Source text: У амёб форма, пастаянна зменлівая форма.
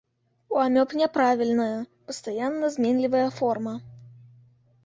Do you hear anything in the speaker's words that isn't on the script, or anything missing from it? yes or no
yes